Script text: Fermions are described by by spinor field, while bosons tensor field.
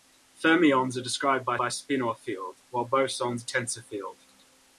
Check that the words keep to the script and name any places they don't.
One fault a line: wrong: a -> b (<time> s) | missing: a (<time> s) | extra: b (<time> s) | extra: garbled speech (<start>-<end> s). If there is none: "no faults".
no faults